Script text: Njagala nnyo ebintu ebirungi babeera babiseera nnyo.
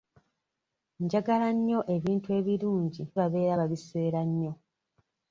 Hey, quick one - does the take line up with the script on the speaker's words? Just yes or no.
yes